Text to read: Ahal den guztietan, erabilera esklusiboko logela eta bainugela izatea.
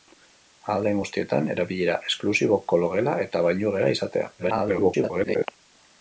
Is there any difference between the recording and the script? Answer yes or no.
yes